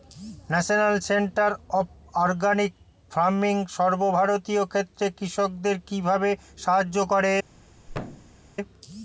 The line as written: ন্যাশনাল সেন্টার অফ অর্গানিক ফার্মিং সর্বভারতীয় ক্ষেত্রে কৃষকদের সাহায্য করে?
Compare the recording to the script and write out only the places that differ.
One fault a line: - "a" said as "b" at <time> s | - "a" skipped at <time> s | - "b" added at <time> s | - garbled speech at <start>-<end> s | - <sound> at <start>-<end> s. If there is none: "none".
- "কিভাবে" added at 5.9 s
- thud at 7.9-8.4 s